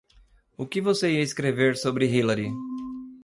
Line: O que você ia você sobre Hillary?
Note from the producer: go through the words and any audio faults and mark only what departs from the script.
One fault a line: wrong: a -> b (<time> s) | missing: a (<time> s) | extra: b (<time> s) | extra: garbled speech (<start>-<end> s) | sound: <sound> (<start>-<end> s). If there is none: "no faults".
wrong: você -> escrever (1.2 s)